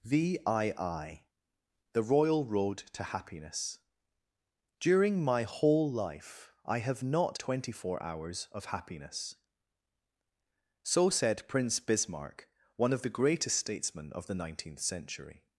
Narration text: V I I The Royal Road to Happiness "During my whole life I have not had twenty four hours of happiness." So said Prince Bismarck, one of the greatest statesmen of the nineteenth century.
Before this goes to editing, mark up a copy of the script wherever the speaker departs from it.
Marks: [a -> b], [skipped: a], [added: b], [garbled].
V I I The Royal Road to Happiness "During my whole life I have not [skipped: had] twenty four hours of happiness." So said Prince Bismarck, one of the greatest statesmen of the nineteenth century.